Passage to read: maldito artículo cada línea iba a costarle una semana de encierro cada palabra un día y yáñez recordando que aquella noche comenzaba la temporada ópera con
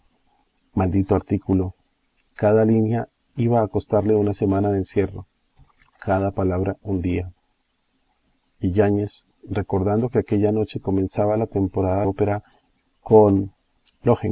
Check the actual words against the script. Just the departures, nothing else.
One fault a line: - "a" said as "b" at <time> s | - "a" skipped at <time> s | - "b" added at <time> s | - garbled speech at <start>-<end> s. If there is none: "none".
none